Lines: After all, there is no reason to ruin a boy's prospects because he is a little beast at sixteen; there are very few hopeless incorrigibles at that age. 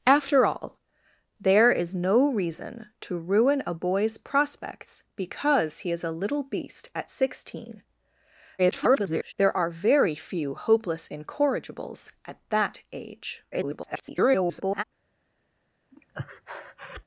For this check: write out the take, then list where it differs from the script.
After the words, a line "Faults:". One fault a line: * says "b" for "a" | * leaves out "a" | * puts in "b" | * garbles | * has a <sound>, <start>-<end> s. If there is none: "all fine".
After all, there is no reason to ruin a boy's prospects because he is a little beast at sixteen; [garbled] there are very few hopeless incorrigibles at that age. [garbled]
Faults:
* garbles
* garbles
* has a breath, 15.9-17.0 s